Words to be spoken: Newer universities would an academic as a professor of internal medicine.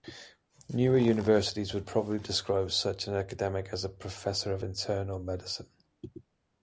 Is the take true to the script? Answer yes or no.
no